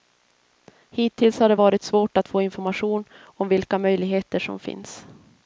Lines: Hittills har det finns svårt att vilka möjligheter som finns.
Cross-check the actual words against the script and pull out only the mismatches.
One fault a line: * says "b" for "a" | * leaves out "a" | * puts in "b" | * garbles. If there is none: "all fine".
* says "varit" for "finns"
* puts in "få information om"